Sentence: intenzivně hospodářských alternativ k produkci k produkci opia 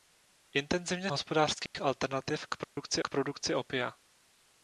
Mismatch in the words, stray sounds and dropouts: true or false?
true